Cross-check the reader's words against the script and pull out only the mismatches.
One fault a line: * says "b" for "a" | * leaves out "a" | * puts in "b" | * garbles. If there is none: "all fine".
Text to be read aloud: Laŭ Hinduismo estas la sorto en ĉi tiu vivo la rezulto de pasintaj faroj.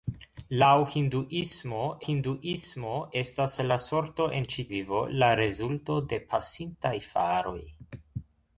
* puts in "Hinduismo"
* leaves out "tiu"